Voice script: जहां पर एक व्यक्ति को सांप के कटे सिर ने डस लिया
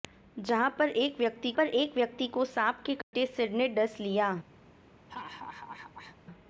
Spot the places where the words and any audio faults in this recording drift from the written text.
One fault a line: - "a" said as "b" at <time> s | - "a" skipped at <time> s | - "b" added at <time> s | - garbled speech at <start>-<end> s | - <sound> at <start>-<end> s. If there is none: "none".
- "पर एक व्यक्ति" added at 1.6 s
- dropout at 3.0-3.1 s
- laugh at 5.1-6.2 s